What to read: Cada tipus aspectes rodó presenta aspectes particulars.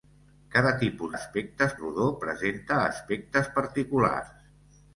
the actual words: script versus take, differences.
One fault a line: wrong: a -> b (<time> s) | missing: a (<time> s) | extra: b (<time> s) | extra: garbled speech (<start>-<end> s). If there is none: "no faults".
no faults